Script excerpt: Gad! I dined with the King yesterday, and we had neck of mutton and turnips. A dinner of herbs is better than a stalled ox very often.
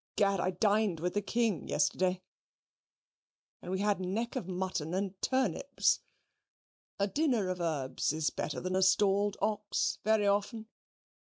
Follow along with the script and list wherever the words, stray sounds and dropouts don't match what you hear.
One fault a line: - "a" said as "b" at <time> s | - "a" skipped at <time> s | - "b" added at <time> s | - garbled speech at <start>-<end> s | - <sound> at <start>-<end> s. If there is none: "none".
none